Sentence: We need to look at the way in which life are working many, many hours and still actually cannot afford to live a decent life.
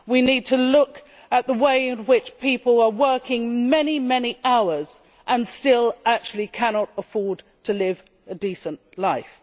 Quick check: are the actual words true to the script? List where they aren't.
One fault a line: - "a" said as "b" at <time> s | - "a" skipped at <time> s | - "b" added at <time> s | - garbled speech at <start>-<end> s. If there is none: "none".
- "life" said as "people" at 2.4 s